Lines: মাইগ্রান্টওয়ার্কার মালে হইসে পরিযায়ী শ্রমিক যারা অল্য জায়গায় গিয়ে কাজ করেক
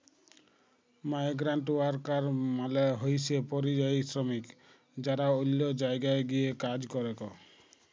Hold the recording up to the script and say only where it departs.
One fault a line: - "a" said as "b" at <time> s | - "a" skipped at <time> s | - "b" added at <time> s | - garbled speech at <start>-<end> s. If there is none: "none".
none